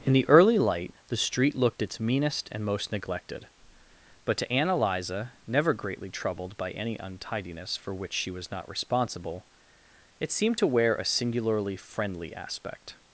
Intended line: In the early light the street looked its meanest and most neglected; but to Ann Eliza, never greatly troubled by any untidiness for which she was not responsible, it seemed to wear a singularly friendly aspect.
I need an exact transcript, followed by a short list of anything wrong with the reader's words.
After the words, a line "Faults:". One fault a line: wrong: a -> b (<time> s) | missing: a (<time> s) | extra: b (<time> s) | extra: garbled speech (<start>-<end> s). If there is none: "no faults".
In the early light the street looked its meanest and most neglected; but to Ann Eliza, never greatly troubled by any untidiness for which she was not responsible, it seemed to wear a singularly friendly aspect.
Faults:
no faults